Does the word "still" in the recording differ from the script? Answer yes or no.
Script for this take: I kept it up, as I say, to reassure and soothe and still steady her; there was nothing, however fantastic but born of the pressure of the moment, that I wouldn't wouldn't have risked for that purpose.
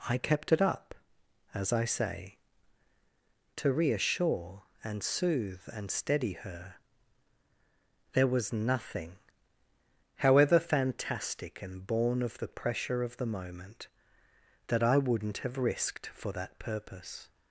yes